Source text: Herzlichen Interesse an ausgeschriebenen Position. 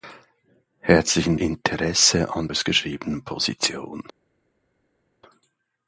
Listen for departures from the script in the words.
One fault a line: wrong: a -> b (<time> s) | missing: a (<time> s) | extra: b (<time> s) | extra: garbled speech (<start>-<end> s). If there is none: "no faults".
no faults